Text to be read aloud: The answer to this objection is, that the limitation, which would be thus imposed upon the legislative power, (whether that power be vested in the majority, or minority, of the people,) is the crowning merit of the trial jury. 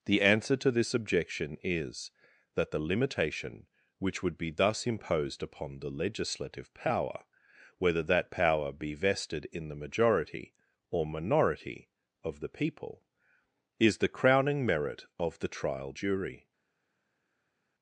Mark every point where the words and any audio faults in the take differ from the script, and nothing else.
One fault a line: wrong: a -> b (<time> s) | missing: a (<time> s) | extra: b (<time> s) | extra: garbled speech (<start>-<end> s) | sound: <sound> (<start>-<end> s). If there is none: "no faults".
no faults